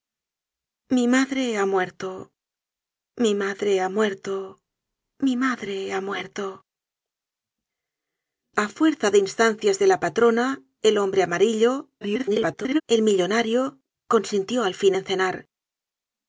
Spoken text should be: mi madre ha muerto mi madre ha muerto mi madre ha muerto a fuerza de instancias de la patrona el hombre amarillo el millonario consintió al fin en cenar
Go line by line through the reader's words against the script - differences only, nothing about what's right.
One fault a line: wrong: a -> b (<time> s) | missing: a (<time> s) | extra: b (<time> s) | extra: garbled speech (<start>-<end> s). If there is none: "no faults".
extra: garbled speech (12.0-12.8 s)